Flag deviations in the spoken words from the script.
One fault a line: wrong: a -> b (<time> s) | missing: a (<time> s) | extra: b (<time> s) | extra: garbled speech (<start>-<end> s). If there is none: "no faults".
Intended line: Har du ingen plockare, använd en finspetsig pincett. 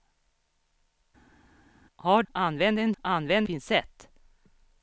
missing: du ingen plockare (2.2 s)
wrong: finspetsig -> använd (3.0 s)